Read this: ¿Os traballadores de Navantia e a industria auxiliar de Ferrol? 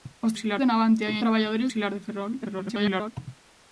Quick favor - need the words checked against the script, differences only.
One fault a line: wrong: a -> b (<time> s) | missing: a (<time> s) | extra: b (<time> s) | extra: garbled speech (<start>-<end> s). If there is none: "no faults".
wrong: traballadores -> auxiliar (0.3 s)
wrong: industria -> traballadores (1.2 s)
extra: garbled speech (2.4-3.1 s)